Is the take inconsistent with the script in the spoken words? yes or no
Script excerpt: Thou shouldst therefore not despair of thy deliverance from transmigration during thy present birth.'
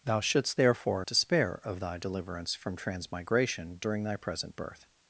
yes